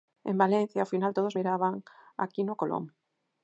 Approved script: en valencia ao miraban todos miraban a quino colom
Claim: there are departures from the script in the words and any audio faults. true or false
true